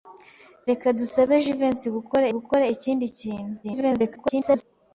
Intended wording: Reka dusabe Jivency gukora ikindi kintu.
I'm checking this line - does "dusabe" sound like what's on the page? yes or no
yes